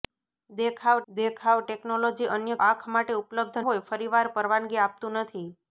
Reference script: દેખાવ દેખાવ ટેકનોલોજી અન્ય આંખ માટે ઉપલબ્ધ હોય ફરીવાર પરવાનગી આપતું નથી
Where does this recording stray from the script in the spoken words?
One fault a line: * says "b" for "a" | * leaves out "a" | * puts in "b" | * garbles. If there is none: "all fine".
all fine